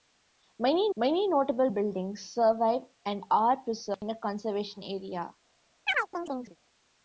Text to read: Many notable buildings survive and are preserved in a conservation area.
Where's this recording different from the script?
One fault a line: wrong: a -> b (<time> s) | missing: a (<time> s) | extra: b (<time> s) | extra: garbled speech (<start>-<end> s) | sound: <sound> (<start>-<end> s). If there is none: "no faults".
extra: many (0.9 s)
sound: chirp (5.9-6.6 s)